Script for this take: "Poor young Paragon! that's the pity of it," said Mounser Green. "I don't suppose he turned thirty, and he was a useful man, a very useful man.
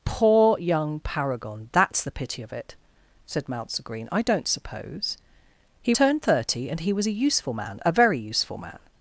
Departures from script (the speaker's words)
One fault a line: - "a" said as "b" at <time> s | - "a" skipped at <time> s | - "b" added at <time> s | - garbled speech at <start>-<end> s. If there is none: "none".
none